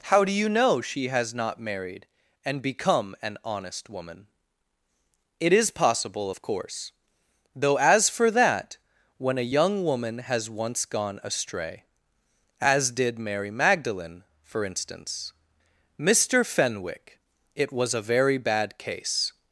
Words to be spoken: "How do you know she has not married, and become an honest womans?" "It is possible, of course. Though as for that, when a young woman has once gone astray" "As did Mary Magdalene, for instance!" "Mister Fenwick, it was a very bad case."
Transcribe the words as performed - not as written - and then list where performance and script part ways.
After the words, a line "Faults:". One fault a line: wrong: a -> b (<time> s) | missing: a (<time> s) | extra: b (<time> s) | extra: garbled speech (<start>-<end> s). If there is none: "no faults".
"How do you know she has not married, and become an honest woman?" "It is possible, of course. Though as for that, when a young woman has once gone astray" "As did Mary Magdalene, for instance!" "Mister Fenwick, it was a very bad case."
Faults:
wrong: womans -> woman (3.9 s)